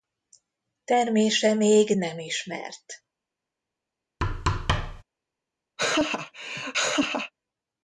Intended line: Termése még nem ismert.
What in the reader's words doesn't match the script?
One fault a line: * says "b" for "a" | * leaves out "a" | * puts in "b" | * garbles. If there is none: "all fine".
all fine